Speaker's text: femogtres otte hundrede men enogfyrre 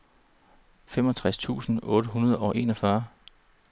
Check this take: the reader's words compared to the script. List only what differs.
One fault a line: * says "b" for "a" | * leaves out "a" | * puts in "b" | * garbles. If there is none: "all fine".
* puts in "tusind"
* says "og" for "men"